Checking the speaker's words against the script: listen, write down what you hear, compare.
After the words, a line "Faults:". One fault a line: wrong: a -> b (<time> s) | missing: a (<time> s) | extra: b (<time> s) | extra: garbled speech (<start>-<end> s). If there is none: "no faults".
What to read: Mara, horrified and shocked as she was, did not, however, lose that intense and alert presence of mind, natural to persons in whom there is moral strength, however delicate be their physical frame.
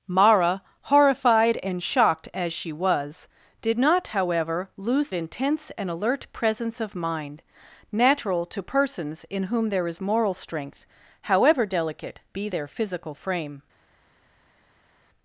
Mara, horrified and shocked as she was, did not, however, lose intense and alert presence of mind, natural to persons in whom there is moral strength, however delicate be their physical frame.
Faults:
missing: that (5.1 s)